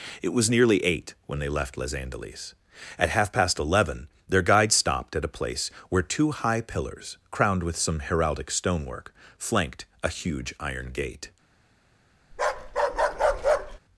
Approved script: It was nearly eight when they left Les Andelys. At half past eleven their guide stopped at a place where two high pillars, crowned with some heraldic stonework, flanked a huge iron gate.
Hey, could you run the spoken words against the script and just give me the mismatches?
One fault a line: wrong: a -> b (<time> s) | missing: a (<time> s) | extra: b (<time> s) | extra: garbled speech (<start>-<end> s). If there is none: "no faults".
no faults